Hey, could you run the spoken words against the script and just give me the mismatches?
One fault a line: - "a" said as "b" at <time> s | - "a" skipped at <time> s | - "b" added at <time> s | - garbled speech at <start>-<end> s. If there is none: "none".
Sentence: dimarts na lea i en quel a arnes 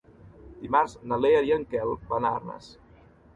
- "van" added at 2.1 s